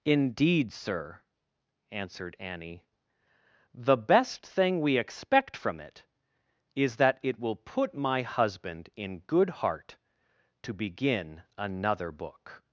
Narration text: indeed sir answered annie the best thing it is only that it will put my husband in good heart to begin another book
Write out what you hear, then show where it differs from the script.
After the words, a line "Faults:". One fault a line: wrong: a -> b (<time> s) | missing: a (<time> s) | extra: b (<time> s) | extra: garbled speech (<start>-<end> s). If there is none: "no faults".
indeed sir answered annie the best thing we expect from it is that it will put my husband in good heart to begin another book
Faults:
extra: we expect from (4.8 s)
missing: only (6.9 s)